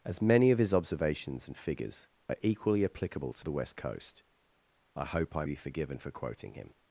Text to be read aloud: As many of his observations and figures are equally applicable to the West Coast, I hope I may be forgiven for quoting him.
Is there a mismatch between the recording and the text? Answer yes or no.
yes